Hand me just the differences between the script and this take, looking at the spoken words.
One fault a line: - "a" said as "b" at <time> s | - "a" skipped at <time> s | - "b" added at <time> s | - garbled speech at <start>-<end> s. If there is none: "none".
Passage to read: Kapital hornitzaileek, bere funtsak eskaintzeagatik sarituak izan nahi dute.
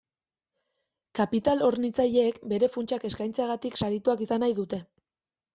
none